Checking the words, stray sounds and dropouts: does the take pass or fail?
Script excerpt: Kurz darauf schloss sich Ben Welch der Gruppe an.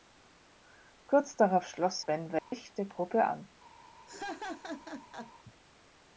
fail